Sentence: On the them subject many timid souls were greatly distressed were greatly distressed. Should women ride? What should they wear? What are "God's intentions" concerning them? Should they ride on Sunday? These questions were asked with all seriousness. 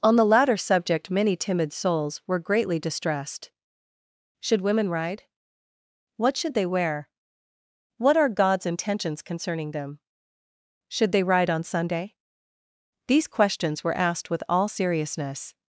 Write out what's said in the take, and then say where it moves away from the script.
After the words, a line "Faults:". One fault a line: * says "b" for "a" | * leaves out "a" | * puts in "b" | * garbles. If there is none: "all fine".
On the latter subject many timid souls were greatly distressed. Should women ride? What should they wear? What are "God's intentions" concerning them? Should they ride on Sunday? These questions were asked with all seriousness.
Faults:
* says "latter" for "them"
* leaves out "were greatly distressed"